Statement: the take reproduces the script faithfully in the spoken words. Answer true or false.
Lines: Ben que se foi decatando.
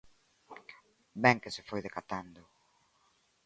true